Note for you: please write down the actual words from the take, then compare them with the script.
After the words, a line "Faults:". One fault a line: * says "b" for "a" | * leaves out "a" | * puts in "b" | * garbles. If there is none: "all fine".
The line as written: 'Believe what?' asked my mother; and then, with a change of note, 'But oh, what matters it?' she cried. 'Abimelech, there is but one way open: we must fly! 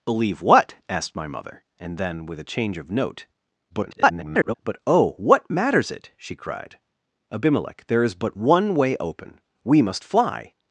'Believe what?' asked my mother; and then, with a change of note, [garbled] 'But oh, what matters it?' she cried. 'Abimelech, there is but one way open: we must fly!
Faults:
* garbles